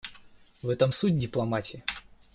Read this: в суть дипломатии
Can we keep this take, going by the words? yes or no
no